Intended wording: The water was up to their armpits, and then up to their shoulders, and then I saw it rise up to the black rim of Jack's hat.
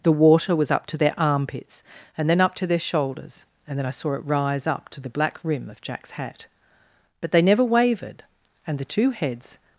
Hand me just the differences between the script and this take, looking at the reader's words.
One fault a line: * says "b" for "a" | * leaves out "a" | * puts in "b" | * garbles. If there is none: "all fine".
* puts in "But they never wavered and the two heads"